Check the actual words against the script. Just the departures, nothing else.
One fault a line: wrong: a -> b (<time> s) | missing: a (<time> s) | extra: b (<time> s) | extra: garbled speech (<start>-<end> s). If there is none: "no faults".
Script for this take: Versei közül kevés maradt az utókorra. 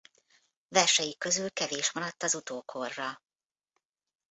no faults